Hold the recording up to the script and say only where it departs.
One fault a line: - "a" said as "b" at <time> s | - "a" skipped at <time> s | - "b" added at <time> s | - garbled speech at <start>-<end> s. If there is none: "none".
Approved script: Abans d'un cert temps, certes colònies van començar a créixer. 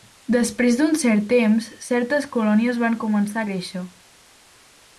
- "Abans" said as "Després" at 0.3 s